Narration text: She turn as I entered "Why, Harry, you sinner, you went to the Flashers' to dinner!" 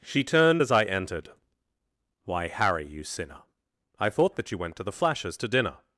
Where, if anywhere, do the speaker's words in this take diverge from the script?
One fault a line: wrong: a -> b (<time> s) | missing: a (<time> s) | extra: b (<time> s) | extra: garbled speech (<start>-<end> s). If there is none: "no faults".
wrong: turn -> turned (0.2 s)
extra: I thought that (4.0 s)